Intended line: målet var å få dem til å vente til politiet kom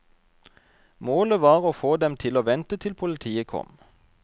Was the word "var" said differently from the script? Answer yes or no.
no